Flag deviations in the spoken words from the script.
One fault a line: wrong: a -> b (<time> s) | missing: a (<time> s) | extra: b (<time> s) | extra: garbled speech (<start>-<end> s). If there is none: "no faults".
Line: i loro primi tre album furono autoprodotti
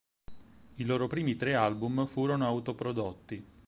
no faults